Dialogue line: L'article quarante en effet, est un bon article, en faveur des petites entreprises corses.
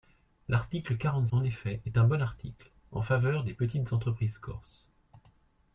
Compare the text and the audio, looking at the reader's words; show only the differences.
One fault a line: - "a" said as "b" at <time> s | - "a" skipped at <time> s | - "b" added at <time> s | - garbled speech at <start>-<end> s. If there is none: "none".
none